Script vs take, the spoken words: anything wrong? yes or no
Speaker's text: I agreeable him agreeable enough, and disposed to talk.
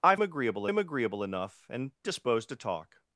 no